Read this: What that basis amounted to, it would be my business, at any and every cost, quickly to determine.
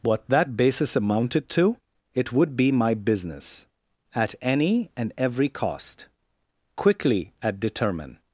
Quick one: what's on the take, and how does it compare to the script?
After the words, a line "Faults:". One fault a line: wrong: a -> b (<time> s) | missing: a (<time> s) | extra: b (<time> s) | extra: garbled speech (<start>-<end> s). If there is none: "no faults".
What that basis amounted to, it would be my business, at any and every cost, quickly at determine.
Faults:
wrong: to -> at (7.4 s)